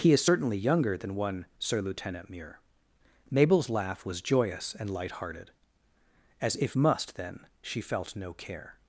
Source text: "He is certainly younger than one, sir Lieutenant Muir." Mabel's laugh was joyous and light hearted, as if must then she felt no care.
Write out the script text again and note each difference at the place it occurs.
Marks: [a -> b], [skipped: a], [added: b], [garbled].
"He is certainly younger than one, sir Lieutenant Muir." Mabel's laugh was joyous and light hearted, as if must then she felt no care.